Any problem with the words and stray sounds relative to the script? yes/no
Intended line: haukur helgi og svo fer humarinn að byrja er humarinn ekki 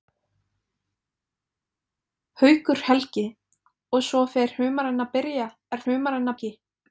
no